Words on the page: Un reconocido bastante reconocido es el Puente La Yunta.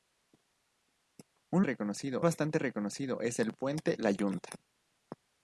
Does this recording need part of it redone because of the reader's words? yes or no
no